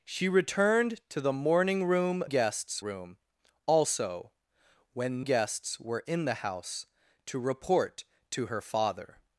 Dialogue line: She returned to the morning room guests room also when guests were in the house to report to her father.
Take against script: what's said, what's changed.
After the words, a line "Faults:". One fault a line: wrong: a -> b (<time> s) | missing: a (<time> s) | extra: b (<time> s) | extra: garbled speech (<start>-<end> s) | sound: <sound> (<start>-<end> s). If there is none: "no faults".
She returned to the morning room guests room also when guests were in the house to report to her father.
Faults:
no faults